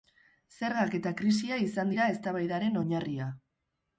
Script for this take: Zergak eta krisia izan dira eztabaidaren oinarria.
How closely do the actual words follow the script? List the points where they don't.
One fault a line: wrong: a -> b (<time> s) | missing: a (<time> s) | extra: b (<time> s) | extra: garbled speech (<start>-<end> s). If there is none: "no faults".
no faults